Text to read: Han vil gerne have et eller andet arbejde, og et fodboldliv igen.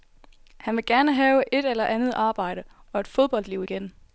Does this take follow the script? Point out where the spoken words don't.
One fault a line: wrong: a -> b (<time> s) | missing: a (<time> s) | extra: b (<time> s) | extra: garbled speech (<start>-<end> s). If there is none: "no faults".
no faults